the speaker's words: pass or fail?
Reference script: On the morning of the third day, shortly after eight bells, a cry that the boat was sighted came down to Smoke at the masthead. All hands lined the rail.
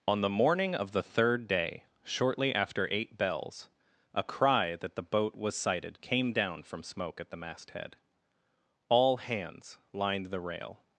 fail